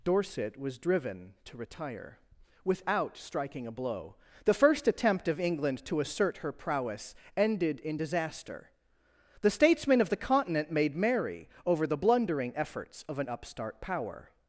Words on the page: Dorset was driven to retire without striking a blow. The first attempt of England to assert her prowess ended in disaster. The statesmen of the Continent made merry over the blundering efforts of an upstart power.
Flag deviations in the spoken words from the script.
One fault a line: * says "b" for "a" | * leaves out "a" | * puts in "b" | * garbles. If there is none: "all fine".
all fine